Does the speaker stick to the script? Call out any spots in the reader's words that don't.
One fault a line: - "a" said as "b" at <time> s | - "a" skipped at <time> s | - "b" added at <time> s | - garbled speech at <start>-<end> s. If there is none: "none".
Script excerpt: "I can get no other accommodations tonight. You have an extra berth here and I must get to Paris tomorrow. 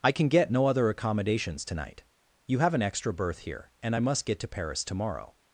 none